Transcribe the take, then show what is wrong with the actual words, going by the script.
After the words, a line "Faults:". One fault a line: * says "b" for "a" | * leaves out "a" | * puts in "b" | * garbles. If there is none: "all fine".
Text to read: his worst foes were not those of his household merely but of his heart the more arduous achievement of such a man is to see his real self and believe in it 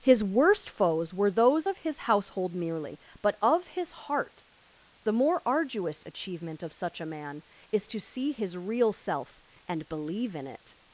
his worst foes were those of his household merely but of his heart the more arduous achievement of such a man is to see his real self and believe in it
Faults:
* leaves out "not"